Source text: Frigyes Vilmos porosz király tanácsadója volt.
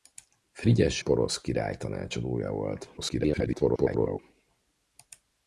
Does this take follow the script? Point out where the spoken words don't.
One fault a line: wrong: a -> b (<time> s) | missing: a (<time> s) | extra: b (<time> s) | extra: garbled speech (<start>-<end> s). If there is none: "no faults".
missing: Vilmos (1.0 s)
extra: garbled speech (3.0-4.2 s)